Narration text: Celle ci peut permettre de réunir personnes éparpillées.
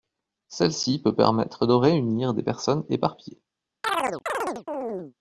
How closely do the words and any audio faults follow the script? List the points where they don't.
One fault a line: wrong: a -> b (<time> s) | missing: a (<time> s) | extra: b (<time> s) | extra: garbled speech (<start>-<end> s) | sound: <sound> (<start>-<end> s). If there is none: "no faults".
extra: des (2.3 s)
sound: chirp (3.8-5.1 s)